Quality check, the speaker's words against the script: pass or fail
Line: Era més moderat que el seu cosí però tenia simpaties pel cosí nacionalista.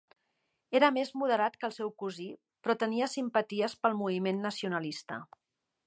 fail